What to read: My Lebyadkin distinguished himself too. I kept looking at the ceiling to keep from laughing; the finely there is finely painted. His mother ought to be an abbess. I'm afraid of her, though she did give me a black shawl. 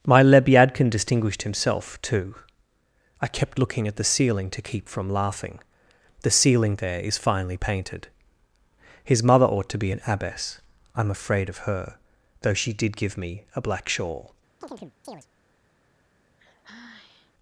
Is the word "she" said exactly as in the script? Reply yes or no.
yes